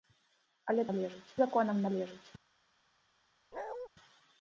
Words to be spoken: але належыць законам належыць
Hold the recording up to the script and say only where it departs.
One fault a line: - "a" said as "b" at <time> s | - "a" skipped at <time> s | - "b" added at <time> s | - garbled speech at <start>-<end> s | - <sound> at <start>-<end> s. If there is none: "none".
- bark at 3.5-3.9 s